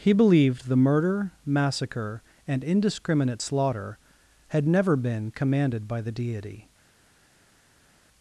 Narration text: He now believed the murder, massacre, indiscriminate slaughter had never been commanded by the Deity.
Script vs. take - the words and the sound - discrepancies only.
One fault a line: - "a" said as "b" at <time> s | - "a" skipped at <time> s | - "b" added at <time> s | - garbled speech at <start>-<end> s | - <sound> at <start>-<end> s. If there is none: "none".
- "now" skipped at 0.1 s
- "and" added at 2.5 s